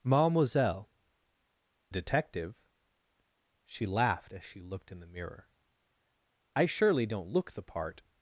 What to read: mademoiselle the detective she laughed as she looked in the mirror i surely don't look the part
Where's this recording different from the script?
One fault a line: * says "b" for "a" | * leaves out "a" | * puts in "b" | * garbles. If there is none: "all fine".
* leaves out "the"